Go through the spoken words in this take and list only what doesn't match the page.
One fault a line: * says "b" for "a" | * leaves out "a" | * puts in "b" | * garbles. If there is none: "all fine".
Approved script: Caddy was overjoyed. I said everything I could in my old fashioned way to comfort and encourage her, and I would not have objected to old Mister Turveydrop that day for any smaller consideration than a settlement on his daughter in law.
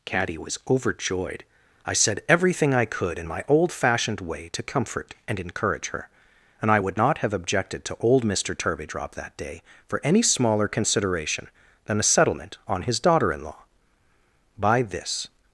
* puts in "By this"